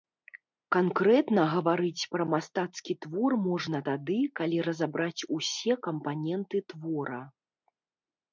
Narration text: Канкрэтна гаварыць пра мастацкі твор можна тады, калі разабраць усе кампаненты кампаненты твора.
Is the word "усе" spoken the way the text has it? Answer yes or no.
yes